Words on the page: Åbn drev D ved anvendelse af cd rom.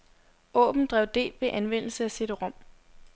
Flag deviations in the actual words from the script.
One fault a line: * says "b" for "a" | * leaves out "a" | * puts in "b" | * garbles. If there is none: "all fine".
all fine